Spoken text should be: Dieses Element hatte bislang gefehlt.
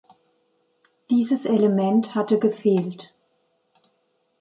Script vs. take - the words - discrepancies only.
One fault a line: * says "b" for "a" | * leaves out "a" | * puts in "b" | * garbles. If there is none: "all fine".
* leaves out "bislang"